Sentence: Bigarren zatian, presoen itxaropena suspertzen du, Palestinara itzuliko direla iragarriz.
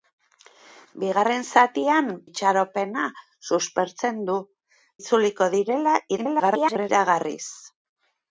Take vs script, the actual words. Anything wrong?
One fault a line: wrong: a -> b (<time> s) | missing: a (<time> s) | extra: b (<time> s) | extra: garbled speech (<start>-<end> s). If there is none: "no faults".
missing: presoen (2.1 s)
missing: Palestinara (4.4 s)
extra: garbled speech (6.2-6.9 s)